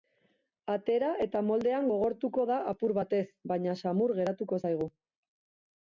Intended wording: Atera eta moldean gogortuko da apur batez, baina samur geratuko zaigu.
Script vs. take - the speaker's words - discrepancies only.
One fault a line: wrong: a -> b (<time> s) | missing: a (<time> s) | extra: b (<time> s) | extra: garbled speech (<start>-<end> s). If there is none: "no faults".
no faults